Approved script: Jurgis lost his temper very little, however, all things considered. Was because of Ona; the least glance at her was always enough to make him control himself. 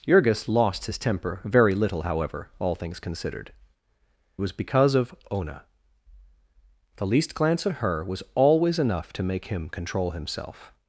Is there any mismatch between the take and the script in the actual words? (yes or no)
no